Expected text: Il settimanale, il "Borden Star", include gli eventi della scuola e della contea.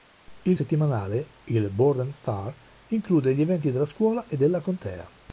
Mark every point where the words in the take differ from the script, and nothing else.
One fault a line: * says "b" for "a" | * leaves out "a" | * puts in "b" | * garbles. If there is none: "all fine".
all fine